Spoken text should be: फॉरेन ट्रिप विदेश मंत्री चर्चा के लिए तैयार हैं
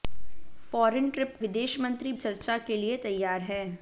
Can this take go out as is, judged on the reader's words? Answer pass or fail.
pass